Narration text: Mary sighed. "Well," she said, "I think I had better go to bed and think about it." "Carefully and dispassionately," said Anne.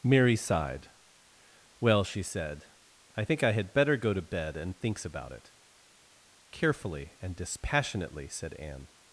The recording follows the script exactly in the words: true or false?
false